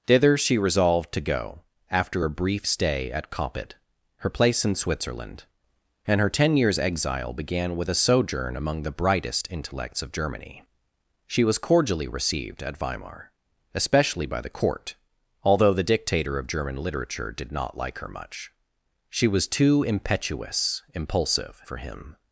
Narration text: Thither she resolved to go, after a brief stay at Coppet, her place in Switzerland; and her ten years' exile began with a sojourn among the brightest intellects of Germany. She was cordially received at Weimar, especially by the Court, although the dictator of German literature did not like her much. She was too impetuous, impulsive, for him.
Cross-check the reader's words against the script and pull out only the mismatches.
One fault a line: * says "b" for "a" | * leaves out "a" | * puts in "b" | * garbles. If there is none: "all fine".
all fine